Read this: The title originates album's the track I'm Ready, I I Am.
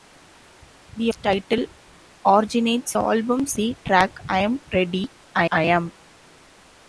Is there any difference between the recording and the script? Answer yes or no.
no